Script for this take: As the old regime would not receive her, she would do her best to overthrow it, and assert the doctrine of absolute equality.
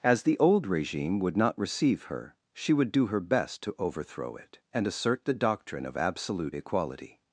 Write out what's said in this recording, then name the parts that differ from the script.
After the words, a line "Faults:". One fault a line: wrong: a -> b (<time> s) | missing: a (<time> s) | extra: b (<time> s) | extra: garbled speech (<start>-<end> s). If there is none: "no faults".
As the old regime would not receive her, she would do her best to overthrow it, and assert the doctrine of absolute equality.
Faults:
no faults